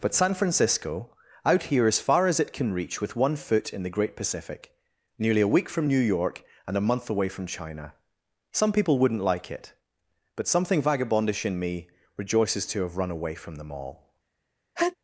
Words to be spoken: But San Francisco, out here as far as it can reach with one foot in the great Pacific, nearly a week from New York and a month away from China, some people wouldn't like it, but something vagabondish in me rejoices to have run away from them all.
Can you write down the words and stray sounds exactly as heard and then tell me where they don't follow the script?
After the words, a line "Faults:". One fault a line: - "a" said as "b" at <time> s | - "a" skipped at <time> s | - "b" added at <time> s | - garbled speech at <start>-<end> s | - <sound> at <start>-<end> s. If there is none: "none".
But San Francisco, out here as far as it can reach with one foot in the great Pacific, nearly a week from New York and a month away from China, some people wouldn't like it, but something vagabondish in me rejoices to have run away from them all.
Faults:
- sneeze at 14.8-15.0 s